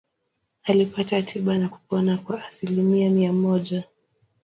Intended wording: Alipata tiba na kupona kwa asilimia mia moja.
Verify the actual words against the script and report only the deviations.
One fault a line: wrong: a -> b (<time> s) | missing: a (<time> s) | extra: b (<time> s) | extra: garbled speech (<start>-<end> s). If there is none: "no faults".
no faults